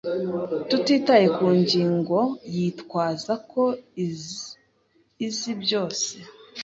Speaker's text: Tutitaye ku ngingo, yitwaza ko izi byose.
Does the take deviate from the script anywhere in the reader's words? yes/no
no